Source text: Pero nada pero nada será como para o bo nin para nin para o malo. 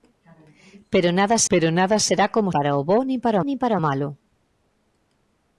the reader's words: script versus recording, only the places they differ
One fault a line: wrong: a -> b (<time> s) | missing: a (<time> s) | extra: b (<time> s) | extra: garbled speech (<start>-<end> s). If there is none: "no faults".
no faults